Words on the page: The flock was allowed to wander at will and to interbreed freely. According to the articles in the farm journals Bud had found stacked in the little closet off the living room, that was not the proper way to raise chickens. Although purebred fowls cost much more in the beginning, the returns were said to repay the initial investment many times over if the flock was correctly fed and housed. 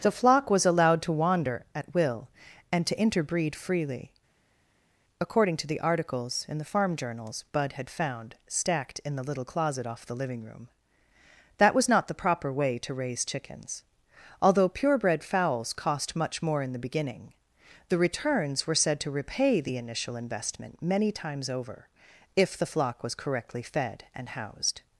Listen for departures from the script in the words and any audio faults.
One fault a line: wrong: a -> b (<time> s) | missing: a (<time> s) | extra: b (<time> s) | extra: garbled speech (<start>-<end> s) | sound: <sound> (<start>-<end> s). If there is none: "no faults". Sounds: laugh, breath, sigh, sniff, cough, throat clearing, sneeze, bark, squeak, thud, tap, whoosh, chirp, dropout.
no faults